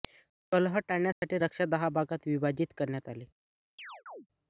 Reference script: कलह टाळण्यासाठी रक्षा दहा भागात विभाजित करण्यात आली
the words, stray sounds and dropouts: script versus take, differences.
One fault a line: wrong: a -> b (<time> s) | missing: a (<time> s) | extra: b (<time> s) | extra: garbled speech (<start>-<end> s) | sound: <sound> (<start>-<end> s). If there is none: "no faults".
sound: dropout (1.1-1.2 s)
sound: chirp (3.8-4.3 s)